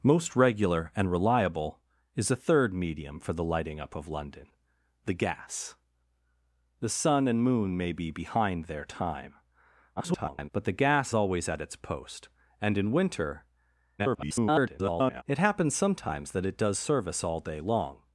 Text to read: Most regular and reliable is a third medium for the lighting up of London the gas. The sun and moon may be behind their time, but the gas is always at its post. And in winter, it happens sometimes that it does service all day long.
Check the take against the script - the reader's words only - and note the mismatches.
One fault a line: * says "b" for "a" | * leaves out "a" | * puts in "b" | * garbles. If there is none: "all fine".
* garbles
* leaves out "is"
* garbles